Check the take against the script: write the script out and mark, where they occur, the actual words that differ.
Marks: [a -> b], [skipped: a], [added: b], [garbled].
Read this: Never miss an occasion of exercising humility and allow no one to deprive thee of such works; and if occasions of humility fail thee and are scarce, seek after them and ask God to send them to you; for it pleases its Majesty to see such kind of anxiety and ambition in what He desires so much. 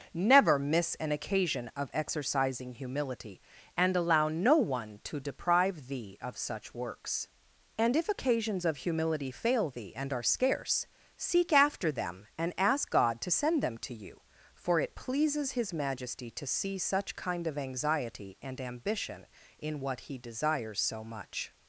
Never miss an occasion of exercising humility and allow no one to deprive thee of such works; and if occasions of humility fail thee and are scarce, seek after them and ask God to send them to you; for it pleases [its -> his] Majesty to see such kind of anxiety and ambition in what He desires so much.